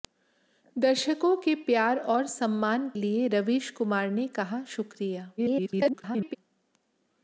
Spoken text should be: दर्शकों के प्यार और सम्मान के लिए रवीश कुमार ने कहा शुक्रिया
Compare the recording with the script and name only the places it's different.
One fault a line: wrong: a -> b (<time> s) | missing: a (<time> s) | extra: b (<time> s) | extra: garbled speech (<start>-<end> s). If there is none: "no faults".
missing: के (2.9 s)
extra: garbled speech (5.4-6.4 s)